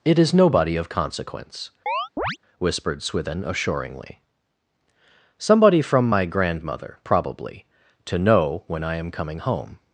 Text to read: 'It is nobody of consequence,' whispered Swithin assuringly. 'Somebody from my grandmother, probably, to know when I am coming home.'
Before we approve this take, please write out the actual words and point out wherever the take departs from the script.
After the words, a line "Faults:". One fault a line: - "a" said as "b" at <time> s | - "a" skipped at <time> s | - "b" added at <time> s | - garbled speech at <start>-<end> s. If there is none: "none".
'It is nobody of consequence,' whispered Swithin assuringly. 'Somebody from my grandmother, probably, to know when I am coming home.'
Faults:
none